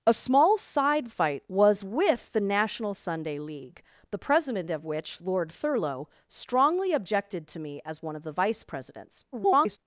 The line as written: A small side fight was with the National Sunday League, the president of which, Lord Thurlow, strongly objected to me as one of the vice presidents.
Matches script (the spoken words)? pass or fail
fail